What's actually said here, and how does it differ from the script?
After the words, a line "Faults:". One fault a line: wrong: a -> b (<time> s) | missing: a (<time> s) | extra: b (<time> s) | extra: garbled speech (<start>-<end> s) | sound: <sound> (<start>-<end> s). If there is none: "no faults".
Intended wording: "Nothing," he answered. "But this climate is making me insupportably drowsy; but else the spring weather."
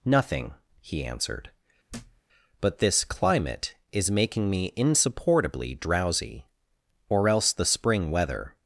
"Nothing," he answered. "But this climate is making me insupportably drowsy; or else the spring weather."
Faults:
sound: thud (1.9-2.2 s)
wrong: but -> or (7.1 s)